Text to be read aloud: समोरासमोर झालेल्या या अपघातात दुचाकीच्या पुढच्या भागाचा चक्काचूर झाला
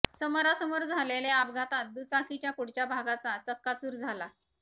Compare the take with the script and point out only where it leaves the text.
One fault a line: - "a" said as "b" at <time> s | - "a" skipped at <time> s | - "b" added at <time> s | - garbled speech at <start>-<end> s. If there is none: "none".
none